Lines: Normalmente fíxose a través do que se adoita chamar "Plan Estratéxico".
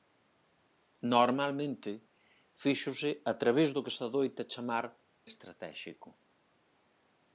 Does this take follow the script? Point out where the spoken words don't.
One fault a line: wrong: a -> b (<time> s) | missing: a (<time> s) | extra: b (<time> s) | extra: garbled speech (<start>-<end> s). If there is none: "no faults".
missing: Plan (4.8 s)